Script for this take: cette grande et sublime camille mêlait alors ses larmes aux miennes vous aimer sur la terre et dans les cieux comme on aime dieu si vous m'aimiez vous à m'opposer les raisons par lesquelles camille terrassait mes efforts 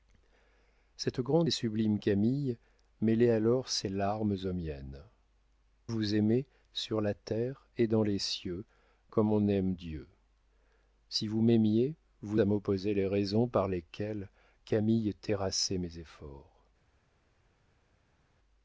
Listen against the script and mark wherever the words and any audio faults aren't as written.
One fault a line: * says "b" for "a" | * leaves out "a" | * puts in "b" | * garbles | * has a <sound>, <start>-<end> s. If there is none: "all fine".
all fine